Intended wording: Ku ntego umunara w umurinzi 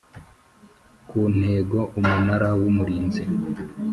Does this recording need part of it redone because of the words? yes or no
no